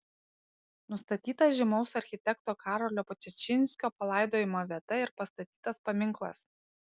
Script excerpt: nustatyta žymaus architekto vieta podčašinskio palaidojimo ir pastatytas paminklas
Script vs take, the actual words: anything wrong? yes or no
yes